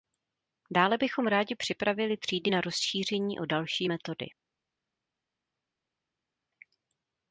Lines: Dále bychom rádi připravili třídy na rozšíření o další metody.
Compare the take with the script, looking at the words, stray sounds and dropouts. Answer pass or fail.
pass